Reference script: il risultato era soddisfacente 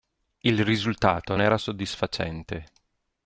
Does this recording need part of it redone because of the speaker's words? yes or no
no